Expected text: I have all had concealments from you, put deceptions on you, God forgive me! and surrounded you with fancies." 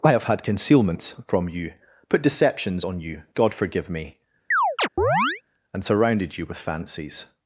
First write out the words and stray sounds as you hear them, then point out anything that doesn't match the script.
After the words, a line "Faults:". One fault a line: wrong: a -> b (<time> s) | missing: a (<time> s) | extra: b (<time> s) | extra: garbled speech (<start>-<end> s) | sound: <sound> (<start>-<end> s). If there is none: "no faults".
I have had concealments from you, put deceptions on you, God forgive me! and surrounded you with fancies."
Faults:
missing: all (0.2 s)
sound: chirp (4.5-5.4 s)